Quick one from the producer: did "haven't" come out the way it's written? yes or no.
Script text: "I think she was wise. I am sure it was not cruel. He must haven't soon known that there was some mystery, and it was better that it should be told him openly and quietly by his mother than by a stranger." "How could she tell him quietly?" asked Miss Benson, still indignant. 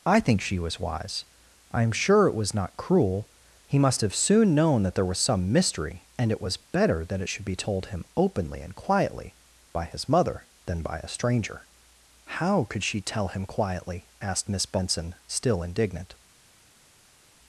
no